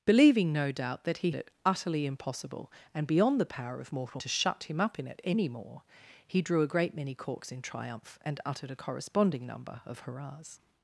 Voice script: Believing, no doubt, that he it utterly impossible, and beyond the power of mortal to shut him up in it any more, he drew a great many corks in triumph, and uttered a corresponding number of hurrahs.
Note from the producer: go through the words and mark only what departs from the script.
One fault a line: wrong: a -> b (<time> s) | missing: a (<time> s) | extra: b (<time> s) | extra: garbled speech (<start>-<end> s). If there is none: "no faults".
no faults